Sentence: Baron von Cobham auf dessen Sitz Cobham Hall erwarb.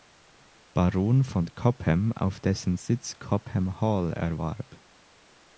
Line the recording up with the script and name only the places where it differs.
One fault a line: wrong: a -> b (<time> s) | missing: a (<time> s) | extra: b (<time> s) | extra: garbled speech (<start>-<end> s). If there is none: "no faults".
no faults